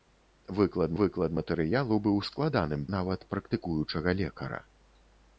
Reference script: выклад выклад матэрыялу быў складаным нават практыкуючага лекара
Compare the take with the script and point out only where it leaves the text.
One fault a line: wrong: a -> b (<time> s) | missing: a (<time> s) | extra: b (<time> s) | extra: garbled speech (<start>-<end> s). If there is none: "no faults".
no faults